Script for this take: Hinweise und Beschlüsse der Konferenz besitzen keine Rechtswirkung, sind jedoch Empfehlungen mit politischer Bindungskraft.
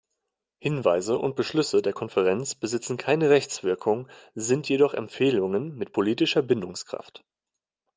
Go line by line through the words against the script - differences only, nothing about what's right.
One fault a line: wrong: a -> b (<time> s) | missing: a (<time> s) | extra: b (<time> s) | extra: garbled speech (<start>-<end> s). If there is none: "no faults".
no faults